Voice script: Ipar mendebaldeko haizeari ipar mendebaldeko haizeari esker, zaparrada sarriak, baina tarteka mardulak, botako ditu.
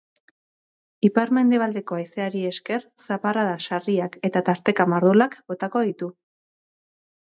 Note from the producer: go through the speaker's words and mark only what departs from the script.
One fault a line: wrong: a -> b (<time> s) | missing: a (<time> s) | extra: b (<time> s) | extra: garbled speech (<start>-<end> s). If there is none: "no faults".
missing: ipar mendebaldeko haizeari (2.4 s)
wrong: baina -> eta (4.3 s)